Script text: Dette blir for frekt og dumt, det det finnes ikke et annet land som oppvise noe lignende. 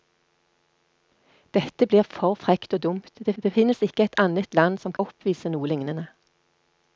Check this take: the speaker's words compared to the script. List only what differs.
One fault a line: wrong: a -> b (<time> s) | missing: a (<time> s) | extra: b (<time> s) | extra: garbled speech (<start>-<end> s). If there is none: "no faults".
no faults